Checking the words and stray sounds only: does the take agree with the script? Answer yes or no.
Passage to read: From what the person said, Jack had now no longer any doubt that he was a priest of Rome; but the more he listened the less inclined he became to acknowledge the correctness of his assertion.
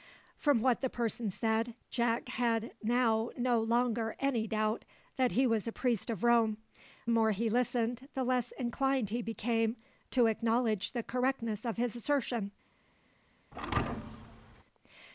no